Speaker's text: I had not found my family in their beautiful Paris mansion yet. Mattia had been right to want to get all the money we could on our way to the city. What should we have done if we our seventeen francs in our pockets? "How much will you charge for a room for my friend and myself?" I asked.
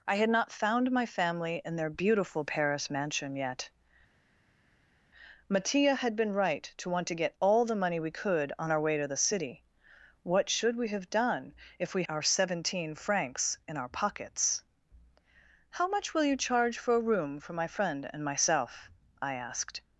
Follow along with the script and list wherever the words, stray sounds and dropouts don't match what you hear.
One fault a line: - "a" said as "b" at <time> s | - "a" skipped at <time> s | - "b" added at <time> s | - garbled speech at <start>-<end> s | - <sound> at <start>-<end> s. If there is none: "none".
none